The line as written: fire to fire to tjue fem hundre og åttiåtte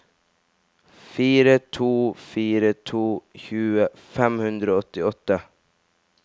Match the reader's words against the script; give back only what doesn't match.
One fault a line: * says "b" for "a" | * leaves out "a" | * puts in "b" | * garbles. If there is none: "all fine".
all fine